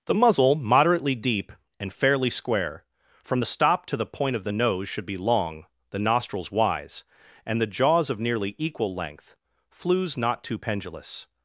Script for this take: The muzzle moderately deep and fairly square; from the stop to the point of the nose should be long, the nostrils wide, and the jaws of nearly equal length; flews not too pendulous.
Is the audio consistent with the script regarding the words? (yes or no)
no